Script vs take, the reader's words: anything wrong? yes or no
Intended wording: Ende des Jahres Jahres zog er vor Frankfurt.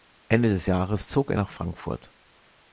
yes